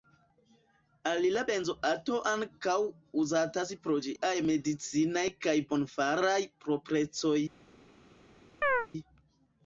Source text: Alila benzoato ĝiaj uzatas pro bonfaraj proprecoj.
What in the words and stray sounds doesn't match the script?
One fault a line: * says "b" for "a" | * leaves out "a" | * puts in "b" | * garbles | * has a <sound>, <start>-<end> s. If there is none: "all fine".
* says "ankaŭ" for "ĝiaj"
* puts in "ĝiaj medicinaj kaj"
* has a chirp, 8.6-8.9 s